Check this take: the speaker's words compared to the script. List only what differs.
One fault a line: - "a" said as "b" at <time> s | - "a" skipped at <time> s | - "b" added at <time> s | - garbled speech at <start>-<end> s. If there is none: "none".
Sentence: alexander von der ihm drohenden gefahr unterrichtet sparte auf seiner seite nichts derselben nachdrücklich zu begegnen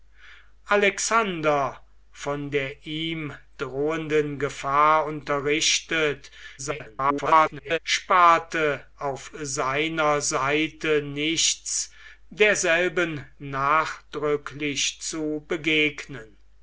- garbled speech at 6.6-7.8 s